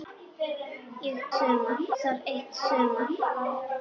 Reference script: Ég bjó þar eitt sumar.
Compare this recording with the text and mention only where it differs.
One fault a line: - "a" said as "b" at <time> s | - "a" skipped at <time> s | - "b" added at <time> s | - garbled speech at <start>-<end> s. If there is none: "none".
- "bjó" said as "sumar" at 1.4 s